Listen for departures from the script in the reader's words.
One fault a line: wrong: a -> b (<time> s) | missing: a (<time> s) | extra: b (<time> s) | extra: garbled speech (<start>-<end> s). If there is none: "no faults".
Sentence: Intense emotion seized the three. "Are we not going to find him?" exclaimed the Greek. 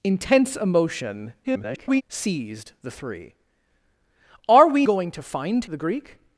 extra: garbled speech (1.4-2.0 s)
missing: not (4.9 s)
missing: him exclaimed (5.6 s)